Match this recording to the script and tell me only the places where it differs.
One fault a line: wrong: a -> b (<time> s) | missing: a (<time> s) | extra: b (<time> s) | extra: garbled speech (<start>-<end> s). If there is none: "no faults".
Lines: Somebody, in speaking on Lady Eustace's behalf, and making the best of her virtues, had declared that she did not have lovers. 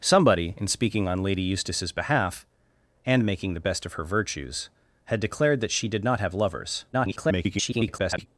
extra: garbled speech (6.9-8.3 s)